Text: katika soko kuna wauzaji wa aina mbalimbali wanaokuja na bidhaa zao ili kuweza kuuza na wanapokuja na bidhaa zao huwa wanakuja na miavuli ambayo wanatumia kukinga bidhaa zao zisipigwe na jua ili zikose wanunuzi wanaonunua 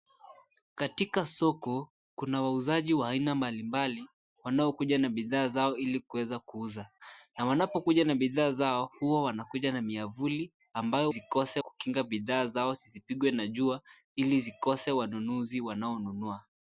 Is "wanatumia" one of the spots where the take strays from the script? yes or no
yes